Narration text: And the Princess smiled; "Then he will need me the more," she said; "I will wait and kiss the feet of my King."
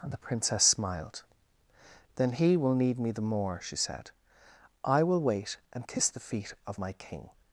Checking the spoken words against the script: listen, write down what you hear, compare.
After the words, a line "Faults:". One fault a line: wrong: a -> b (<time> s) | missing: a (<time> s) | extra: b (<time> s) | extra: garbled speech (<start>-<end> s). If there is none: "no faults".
And the Princess smiled; "Then he will need me the more," she said; "I will wait and kiss the feet of my King."
Faults:
no faults